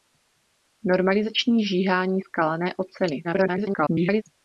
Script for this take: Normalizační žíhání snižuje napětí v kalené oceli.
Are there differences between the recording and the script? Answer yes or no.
yes